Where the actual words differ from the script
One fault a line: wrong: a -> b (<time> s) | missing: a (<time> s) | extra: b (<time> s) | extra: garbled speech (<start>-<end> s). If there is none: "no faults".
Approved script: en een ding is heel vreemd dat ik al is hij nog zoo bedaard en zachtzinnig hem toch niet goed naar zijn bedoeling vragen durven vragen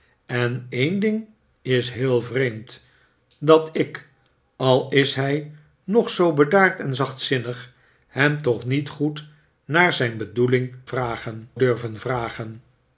no faults